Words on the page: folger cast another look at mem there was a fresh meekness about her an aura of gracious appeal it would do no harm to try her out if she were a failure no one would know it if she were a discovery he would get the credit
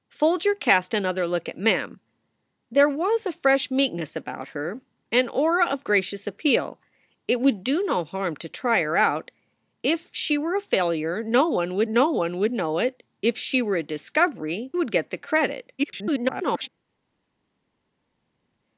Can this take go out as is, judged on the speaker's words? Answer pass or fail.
fail